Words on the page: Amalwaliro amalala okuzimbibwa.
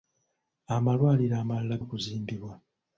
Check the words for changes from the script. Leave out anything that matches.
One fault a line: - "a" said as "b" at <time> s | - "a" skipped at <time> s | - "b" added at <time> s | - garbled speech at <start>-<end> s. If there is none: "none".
none